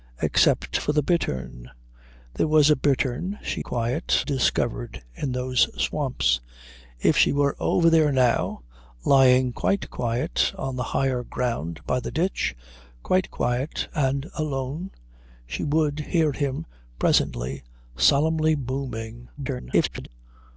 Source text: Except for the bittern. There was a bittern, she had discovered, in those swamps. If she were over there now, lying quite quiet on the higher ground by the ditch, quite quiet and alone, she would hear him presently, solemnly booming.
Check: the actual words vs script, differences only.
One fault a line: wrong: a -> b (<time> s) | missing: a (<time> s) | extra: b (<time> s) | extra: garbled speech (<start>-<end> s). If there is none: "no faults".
wrong: had -> quiet (3.6 s)
extra: garbled speech (19.4-20.1 s)